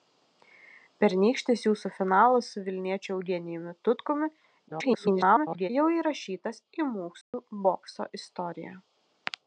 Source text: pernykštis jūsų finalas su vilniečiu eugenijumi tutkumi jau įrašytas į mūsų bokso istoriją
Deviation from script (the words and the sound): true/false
true